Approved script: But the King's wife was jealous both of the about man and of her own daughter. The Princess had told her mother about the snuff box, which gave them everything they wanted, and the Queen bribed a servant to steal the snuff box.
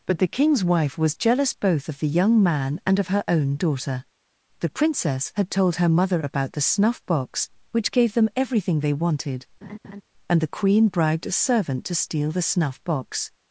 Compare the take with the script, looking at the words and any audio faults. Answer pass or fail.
fail